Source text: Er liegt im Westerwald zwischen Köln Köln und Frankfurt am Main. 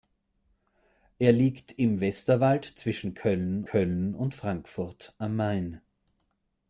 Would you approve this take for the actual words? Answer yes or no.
yes